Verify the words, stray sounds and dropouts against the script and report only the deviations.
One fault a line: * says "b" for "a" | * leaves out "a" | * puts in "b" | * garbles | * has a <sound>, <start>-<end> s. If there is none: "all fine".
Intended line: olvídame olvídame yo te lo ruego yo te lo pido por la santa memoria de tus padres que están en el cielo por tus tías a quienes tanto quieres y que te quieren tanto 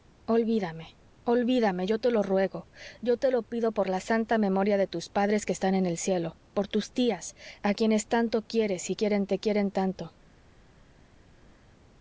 * says "quieren" for "que"